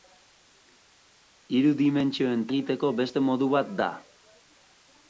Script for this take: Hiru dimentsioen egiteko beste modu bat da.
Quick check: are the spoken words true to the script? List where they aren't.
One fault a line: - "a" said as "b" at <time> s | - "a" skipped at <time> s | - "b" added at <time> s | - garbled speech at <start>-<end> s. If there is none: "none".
none